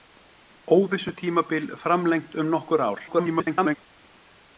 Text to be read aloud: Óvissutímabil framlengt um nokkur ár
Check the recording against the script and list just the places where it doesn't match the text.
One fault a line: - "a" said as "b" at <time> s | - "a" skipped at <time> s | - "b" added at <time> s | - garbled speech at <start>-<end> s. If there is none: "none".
- garbled speech at 3.1-3.8 s